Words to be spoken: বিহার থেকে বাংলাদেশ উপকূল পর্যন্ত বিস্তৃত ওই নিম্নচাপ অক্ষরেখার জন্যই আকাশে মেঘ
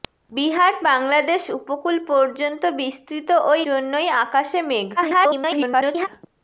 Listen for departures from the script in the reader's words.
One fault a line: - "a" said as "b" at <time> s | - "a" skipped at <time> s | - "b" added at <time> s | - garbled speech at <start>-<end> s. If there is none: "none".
- "থেকে" skipped at 0.7 s
- "নিম্নচাপ অক্ষরেখার" skipped at 3.6 s
- garbled speech at 5.0-6.1 s